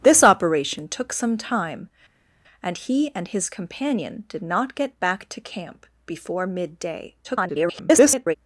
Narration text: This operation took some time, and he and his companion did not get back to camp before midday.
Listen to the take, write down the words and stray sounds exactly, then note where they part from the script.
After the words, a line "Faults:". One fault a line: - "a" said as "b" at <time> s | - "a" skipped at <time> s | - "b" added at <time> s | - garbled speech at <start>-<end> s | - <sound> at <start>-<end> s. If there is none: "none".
This operation took some time, and he and his companion did not get back to camp before midday. [garbled]
Faults:
- garbled speech at 7.2-8.3 s